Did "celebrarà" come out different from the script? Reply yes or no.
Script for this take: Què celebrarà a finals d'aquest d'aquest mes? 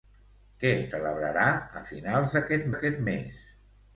no